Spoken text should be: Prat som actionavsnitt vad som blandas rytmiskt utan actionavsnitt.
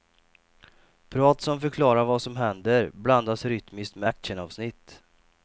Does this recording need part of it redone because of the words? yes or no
yes